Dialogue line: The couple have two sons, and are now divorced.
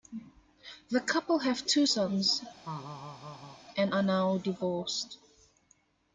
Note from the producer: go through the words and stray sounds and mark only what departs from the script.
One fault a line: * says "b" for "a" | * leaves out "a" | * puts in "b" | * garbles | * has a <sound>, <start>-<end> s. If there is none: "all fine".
* has a laugh, 2.6-3.6 s